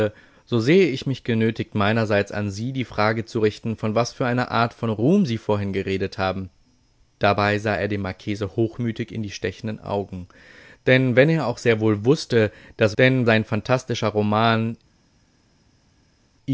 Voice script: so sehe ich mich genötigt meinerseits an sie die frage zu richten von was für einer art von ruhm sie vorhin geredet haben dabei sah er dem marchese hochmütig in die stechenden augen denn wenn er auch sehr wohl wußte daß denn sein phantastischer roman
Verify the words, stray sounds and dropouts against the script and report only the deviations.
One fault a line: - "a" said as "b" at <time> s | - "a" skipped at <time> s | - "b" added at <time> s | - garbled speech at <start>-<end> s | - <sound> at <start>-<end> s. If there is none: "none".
none